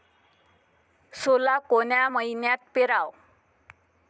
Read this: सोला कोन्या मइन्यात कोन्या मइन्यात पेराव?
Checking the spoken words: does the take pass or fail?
fail